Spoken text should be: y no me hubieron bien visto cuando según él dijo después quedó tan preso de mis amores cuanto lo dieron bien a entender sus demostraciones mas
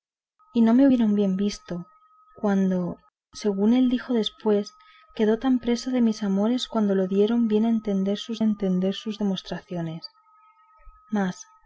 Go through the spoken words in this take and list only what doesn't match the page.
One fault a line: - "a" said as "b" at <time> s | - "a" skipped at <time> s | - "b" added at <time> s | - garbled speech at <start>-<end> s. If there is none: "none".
- "entender sus" added at 8.4 s